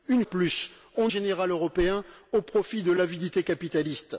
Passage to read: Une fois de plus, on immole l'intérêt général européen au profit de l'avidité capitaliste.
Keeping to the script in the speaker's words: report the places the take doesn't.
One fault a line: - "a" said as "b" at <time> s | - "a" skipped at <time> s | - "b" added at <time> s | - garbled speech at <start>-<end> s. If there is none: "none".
- "fois" skipped at 0.2 s
- "immole l'intérêt" skipped at 1.1 s